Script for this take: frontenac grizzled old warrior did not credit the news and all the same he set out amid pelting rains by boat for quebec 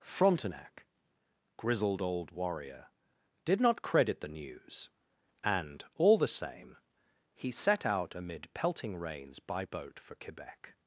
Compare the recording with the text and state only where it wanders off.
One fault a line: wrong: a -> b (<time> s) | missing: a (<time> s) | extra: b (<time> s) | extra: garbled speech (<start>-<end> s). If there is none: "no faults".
no faults